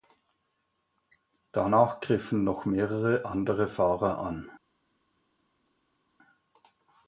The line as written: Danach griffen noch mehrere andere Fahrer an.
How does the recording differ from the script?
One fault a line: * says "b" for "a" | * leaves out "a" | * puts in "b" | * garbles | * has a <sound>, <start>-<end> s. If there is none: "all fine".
all fine